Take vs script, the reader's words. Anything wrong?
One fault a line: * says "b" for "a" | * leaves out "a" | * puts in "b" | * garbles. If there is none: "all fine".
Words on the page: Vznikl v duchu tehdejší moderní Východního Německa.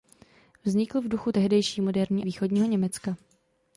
all fine